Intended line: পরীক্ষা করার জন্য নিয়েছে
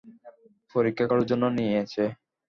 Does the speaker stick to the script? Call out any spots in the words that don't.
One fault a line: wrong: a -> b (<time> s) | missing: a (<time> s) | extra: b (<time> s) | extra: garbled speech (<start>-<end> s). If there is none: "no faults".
no faults